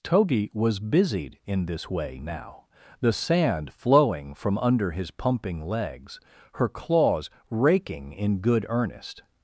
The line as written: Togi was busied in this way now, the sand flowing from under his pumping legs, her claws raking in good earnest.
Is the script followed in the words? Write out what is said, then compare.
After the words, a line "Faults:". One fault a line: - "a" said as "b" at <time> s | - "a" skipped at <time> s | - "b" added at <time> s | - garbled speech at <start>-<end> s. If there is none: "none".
Togi was busied in this way now, the sand flowing from under his pumping legs, her claws raking in good earnest.
Faults:
none